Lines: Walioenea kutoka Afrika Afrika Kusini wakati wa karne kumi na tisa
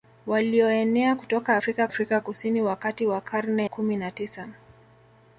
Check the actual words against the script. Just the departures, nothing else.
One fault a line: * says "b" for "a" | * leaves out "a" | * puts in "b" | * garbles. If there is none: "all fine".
all fine